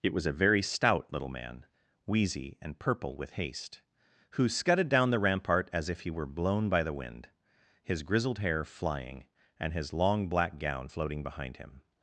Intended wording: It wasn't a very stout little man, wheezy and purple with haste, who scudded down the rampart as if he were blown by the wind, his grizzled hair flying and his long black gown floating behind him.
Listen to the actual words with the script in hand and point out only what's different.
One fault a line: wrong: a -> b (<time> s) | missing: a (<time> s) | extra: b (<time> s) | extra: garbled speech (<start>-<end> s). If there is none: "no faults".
wrong: wasn't -> was (0.1 s)